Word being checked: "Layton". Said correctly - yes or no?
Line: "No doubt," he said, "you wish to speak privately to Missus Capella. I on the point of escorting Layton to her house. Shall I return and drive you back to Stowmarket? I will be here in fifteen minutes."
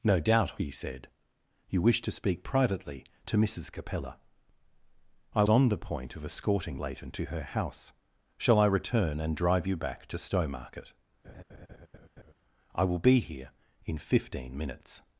yes